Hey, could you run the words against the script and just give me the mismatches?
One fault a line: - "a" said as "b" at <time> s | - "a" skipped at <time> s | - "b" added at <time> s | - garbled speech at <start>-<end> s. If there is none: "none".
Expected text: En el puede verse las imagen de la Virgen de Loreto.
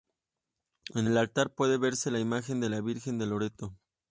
- "altar" added at 1.2 s
- "las" said as "la" at 2.1 s